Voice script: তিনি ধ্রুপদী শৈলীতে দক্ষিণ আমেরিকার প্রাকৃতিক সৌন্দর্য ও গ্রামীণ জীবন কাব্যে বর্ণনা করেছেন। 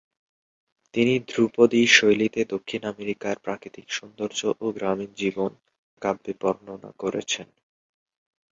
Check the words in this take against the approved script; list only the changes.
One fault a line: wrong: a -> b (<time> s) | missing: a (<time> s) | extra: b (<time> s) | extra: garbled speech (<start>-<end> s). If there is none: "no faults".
no faults